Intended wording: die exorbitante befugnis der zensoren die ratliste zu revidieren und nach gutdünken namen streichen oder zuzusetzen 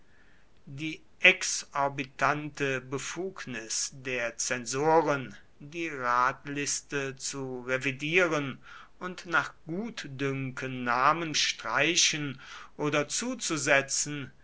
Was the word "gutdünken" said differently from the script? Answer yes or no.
no